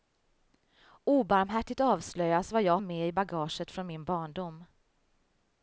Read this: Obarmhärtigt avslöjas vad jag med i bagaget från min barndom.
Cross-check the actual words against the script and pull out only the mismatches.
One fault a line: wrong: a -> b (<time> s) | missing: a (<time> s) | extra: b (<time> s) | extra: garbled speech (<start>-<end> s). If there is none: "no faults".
no faults